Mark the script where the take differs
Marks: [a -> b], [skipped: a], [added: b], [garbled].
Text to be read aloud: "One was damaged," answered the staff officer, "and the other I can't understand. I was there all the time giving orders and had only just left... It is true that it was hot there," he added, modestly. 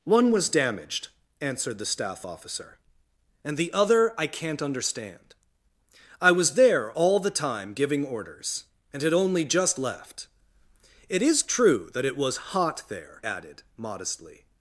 "One was damaged," answered the staff officer, "and the other I can't understand. I was there all the time giving orders and had only just left... It is true that it was hot there," [skipped: he] added, modestly.